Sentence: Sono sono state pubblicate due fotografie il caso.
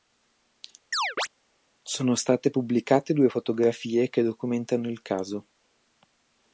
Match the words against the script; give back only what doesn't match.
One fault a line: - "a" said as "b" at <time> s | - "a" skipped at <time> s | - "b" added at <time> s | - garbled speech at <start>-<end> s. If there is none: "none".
- "sono" skipped at 2.1 s
- "che documentano" added at 4.1 s